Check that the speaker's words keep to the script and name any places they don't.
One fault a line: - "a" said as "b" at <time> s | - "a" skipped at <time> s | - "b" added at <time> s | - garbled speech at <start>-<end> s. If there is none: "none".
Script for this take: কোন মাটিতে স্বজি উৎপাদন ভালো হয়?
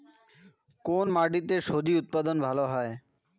none